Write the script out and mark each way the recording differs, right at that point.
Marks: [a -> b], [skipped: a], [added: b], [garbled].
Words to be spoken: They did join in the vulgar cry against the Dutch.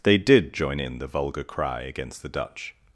They did join in the vulgar cry against the Dutch.